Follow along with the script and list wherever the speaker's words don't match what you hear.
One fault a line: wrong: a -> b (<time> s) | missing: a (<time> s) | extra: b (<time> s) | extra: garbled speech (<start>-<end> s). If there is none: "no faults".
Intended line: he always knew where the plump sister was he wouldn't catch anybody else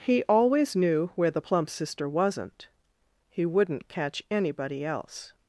wrong: was -> wasn't (2.1 s)